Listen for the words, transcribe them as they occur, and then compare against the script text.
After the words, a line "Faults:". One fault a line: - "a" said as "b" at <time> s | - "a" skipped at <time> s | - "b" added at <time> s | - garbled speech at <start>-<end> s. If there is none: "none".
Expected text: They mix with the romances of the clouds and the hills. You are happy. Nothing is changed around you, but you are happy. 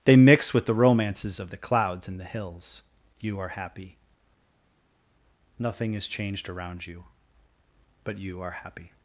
They mix with the romances of the clouds and the hills. You are happy. Nothing is changed around you, but you are happy.
Faults:
none